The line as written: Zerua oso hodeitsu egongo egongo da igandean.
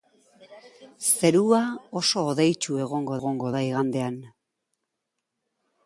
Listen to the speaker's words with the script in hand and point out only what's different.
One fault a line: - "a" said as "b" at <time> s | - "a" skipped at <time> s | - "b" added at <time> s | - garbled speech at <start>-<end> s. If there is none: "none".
none